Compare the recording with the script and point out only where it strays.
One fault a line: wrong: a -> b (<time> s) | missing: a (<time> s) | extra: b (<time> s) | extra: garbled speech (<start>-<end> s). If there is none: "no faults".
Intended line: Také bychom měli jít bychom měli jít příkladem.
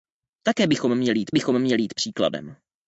no faults